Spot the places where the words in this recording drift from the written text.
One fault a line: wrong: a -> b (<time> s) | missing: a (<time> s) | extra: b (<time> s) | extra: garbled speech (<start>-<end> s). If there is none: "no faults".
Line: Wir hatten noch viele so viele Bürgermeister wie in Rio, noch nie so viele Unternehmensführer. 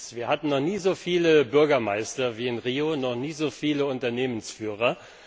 wrong: viele -> nie (0.6 s)